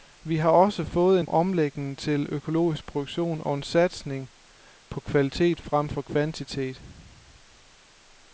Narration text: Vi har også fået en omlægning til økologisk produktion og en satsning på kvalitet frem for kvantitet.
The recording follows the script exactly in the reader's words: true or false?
true